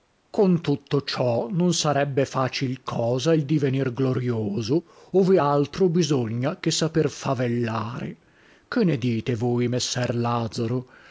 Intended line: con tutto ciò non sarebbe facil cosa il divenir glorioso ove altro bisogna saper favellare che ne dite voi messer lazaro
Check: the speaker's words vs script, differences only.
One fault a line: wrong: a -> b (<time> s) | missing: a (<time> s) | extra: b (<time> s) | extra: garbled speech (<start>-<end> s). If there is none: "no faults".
extra: che (6.6 s)